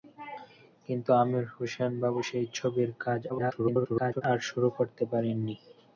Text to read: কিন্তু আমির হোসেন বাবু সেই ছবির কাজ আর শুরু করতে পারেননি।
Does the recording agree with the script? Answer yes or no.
no